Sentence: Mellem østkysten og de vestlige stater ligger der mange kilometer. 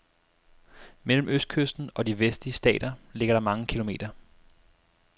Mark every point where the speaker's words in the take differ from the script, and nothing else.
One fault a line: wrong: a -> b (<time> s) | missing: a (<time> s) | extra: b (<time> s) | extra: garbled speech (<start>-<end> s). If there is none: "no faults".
no faults